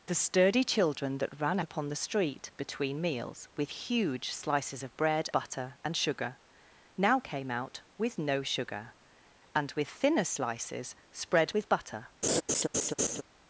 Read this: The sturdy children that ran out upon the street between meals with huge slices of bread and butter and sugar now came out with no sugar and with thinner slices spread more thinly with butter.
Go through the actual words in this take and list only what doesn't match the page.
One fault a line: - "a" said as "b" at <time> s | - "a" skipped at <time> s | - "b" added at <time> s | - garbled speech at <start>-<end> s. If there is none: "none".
- "out" skipped at 1.6 s
- "and" skipped at 5.3 s
- "more thinly" skipped at 11.5 s